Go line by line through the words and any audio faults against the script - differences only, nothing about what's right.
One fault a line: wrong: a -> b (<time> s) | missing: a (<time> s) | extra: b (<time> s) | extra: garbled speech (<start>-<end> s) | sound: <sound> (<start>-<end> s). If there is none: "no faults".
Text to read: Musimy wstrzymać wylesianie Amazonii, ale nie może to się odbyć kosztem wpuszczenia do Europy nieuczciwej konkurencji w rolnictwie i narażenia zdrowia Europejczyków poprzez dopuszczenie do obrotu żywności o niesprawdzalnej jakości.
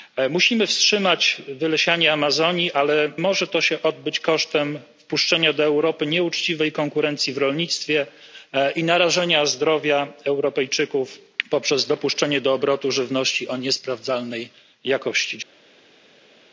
missing: nie (3.1 s)